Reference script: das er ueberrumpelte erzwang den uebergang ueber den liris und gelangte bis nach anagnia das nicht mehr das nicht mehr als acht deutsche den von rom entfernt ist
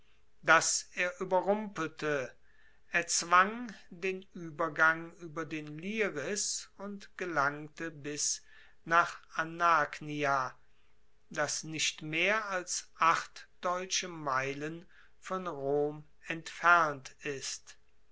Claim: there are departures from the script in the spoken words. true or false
true